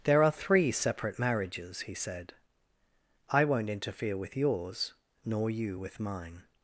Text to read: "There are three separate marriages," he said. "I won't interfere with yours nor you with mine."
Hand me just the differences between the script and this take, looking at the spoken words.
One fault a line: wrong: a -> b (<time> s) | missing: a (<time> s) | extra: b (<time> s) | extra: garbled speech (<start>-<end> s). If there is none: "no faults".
no faults